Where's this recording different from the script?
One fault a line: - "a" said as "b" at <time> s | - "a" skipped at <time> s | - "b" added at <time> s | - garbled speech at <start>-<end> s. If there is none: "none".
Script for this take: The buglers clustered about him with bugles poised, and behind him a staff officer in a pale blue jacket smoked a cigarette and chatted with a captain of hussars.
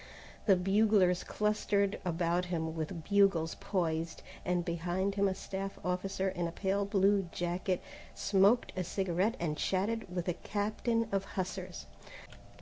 none